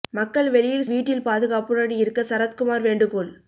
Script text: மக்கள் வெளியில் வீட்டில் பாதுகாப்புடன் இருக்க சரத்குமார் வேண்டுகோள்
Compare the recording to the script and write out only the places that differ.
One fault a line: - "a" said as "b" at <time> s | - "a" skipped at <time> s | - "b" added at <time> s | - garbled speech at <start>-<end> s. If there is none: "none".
none